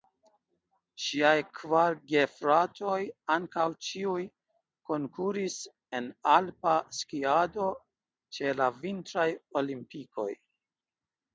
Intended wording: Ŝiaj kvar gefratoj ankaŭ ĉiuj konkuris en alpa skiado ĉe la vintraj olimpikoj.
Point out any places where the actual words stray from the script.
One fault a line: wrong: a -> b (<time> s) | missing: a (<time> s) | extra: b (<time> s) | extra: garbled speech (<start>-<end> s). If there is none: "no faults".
no faults